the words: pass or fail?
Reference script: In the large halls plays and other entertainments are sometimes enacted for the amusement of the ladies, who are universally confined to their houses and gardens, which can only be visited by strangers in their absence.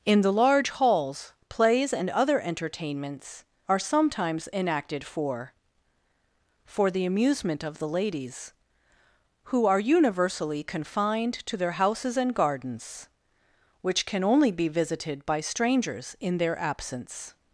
fail